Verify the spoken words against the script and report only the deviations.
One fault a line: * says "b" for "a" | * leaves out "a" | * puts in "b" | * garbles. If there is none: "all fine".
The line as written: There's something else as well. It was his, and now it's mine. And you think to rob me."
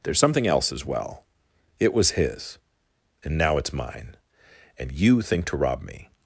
all fine